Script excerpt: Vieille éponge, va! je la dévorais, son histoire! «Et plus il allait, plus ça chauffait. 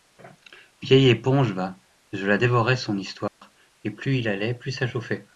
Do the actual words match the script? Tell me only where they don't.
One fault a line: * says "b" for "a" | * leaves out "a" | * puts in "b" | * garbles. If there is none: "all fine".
all fine